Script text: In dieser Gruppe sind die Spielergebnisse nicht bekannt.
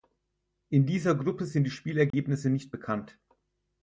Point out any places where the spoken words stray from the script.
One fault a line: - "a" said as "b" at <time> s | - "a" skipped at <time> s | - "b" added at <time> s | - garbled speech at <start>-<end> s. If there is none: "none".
none